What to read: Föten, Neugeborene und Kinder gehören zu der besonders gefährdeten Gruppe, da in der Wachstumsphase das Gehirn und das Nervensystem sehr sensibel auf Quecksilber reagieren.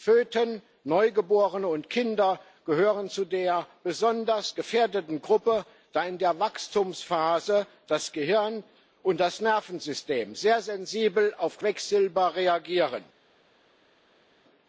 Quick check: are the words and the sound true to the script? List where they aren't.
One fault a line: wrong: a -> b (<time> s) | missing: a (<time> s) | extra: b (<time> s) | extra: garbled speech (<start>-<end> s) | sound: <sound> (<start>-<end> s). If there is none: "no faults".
no faults